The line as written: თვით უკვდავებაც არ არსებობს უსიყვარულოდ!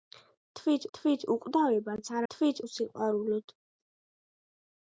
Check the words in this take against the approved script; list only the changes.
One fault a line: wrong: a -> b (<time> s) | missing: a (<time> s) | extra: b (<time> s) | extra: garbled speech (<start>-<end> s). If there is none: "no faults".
extra: თვით (1.0 s)
wrong: არსებობს -> თვით (2.3 s)